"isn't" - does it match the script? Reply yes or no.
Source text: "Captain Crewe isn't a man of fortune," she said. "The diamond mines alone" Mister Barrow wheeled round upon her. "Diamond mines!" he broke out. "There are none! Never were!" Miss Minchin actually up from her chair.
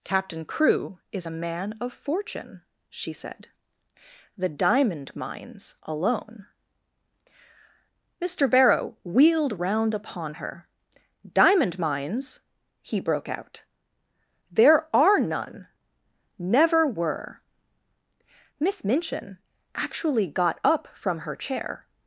no